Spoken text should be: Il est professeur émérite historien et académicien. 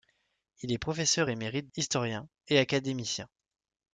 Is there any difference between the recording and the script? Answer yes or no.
no